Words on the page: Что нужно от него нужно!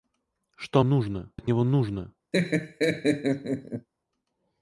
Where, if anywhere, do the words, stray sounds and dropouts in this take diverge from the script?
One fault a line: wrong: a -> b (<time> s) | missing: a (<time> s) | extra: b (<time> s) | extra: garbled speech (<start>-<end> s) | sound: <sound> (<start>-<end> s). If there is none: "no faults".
sound: laugh (2.3-3.9 s)